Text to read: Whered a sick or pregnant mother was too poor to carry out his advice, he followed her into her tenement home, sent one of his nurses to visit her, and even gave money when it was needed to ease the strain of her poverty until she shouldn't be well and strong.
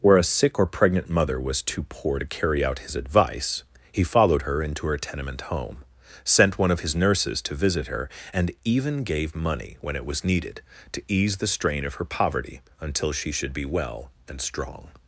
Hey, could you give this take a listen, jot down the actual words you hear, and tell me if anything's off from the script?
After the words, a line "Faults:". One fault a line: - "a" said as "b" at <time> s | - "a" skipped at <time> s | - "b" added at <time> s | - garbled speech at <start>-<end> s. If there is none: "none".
Where a sick or pregnant mother was too poor to carry out his advice, he followed her into her tenement home, sent one of his nurses to visit her, and even gave money when it was needed to ease the strain of her poverty until she should be well and strong.
Faults:
- "Whered" said as "Where" at 0.0 s
- "shouldn't" said as "should" at 13.3 s